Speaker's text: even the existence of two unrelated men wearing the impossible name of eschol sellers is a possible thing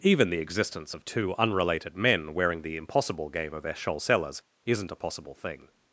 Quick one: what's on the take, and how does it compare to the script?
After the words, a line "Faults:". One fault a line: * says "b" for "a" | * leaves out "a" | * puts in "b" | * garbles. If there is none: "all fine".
even the existence of two unrelated men wearing the impossible game of eschol sellers isn't a possible thing
Faults:
* says "game" for "name"
* says "isn't" for "is"